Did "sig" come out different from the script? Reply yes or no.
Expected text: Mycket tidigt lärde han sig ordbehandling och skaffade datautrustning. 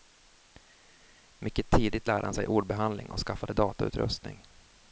no